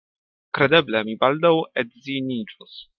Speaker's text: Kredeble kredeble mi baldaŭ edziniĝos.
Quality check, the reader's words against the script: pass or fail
fail